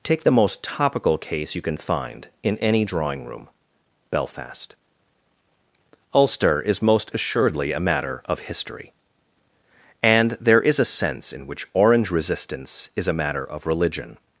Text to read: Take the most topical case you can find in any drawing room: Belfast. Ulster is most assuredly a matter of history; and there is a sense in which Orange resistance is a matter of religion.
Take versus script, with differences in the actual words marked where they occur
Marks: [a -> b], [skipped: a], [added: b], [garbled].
Take the most topical case you can find in any drawing room: Belfast. Ulster is most assuredly a matter of history; and there is a sense in which Orange resistance is a matter of religion.